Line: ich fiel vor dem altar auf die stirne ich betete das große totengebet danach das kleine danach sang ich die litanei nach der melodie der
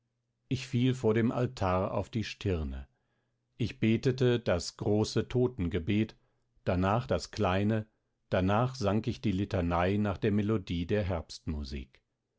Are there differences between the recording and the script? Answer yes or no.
no